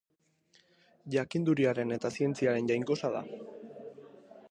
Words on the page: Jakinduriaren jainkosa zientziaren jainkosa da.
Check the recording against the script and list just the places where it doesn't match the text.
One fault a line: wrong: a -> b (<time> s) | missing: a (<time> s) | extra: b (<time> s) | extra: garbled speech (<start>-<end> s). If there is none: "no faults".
wrong: jainkosa -> eta (2.0 s)